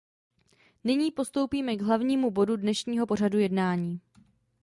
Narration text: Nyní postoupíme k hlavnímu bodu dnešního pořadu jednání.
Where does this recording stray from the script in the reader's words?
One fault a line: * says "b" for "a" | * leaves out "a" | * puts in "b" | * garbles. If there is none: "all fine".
all fine